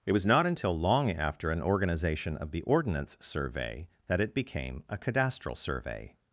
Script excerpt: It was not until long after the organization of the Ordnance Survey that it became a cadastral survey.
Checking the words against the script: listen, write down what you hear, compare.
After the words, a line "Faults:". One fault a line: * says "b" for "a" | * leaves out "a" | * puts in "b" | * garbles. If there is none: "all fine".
It was not until long after an organization of the Ordnance Survey that it became a cadastral survey.
Faults:
* says "an" for "the"